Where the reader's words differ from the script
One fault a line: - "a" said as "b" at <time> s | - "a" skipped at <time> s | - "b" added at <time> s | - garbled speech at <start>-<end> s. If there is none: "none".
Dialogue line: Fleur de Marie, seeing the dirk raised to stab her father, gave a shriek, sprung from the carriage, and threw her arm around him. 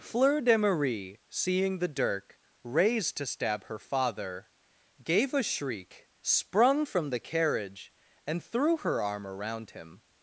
none